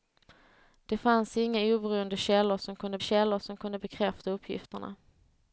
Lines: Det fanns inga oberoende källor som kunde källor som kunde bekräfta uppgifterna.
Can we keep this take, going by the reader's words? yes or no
yes